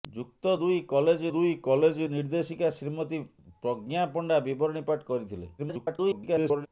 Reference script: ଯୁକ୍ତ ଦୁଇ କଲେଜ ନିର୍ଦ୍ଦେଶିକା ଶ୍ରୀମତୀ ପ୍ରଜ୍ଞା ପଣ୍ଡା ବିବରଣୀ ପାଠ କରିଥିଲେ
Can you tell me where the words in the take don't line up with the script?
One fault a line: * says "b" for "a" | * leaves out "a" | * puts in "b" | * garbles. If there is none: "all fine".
* puts in "ଦୁଇ କଲେଜ"
* garbles